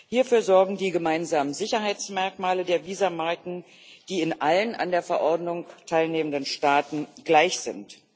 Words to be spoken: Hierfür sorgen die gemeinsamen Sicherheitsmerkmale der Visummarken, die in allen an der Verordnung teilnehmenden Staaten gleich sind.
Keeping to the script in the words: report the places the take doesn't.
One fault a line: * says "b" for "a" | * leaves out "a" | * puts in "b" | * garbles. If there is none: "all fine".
all fine